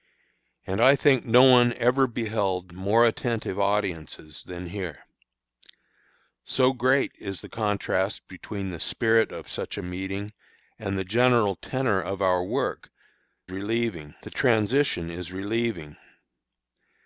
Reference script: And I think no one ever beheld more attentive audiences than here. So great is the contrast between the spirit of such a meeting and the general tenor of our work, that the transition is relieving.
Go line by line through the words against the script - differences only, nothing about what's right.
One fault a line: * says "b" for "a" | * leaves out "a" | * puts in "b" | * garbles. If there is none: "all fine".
* says "relieving" for "that"